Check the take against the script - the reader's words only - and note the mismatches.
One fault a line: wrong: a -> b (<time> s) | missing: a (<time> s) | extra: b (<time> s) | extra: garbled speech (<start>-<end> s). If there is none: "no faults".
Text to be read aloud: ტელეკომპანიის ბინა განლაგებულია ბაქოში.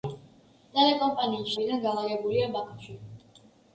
no faults